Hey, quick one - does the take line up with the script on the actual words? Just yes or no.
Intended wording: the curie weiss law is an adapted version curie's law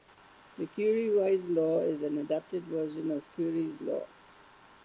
no